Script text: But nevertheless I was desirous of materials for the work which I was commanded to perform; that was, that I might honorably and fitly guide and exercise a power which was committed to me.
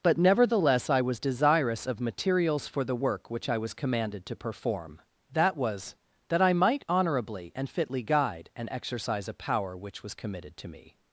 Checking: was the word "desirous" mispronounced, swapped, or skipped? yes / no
no